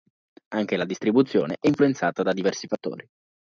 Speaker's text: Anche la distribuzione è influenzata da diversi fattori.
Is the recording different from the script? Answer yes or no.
no